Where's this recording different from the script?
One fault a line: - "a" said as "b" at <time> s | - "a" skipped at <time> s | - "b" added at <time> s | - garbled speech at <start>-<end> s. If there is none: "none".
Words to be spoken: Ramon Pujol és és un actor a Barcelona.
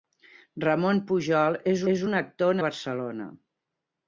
none